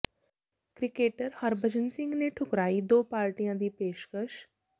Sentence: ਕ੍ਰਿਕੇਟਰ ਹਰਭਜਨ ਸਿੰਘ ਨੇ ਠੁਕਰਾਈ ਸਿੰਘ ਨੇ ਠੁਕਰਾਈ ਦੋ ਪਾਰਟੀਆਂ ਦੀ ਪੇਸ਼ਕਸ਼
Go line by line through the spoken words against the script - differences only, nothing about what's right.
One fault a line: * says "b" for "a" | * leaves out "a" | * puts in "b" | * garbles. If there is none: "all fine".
* leaves out "ਸਿੰਘ ਨੇ ਠੁਕਰਾਈ"